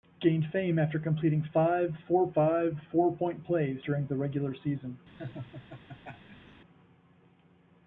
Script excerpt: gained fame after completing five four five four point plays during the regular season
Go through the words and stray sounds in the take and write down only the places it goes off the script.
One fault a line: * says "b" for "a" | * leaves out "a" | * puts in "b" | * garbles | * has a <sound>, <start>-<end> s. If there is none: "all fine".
* has a laugh, 5.2-6.6 s